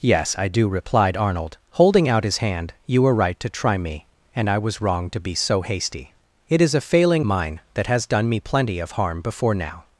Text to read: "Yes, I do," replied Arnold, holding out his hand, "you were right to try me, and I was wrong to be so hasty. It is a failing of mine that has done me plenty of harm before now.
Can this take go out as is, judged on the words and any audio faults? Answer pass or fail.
fail